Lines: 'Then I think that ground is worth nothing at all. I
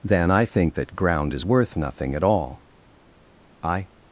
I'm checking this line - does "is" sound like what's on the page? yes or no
yes